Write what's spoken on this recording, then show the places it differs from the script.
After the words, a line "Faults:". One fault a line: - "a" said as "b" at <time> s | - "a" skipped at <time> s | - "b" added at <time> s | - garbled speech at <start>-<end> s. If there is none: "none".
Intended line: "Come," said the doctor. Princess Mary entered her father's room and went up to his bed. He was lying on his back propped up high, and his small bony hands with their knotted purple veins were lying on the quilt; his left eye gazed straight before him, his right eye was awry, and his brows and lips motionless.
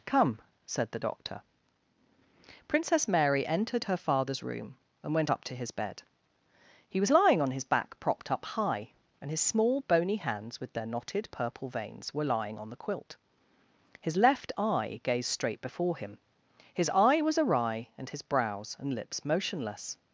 "Come," said the doctor. Princess Mary entered her father's room and went up to his bed. He was lying on his back propped up high, and his small bony hands with their knotted purple veins were lying on the quilt; his left eye gazed straight before him, his eye was awry, and his brows and lips motionless.
Faults:
- "right" skipped at 16.9 s